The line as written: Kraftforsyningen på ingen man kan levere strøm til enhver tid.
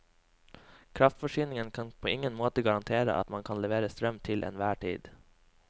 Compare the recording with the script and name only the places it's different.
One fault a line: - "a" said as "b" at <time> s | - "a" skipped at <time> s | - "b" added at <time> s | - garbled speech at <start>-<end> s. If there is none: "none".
- "kan" added at 1.7 s
- "måte garantere at" added at 2.3 s